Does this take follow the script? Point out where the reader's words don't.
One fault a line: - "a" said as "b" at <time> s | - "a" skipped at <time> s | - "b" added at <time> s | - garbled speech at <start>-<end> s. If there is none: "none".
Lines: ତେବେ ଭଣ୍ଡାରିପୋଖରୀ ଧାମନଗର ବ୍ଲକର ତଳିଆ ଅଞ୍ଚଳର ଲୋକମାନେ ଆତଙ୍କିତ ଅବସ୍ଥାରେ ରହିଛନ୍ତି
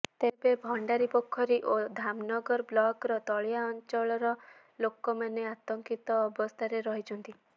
- "ଓ" added at 1.6 s